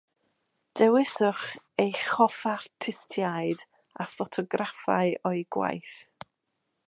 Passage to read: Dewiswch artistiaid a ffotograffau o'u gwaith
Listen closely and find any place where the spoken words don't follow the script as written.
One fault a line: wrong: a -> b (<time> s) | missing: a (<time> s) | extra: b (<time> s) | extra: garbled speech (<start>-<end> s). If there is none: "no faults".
extra: eich hoff (1.8 s)